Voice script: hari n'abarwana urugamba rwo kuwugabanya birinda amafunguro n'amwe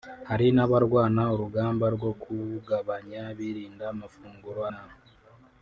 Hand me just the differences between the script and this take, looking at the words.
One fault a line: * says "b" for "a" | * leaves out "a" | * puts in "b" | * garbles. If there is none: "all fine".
all fine